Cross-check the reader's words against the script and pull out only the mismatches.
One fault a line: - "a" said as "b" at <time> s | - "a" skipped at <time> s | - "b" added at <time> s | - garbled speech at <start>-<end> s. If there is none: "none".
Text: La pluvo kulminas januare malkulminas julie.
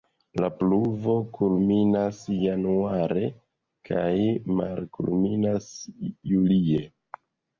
- "kaj" added at 3.9 s